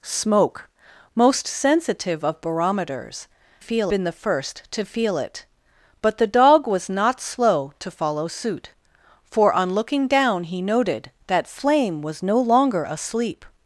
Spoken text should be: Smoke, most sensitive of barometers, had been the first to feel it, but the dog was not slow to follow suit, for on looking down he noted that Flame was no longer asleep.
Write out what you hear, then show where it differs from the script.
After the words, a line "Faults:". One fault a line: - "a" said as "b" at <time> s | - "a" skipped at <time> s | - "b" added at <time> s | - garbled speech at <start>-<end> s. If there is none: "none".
Smoke, most sensitive of barometers, feel been the first to feel it, but the dog was not slow to follow suit, for on looking down he noted that Flame was no longer asleep.
Faults:
- "had" said as "feel" at 3.6 s